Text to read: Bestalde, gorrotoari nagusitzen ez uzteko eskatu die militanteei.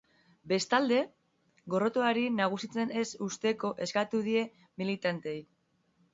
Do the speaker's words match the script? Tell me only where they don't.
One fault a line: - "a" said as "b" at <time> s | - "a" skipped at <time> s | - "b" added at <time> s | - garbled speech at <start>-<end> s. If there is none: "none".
none